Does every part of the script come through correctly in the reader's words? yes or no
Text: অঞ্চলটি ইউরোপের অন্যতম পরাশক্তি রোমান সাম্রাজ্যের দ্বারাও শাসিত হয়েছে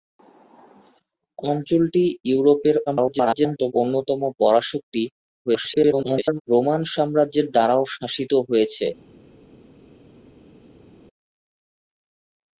no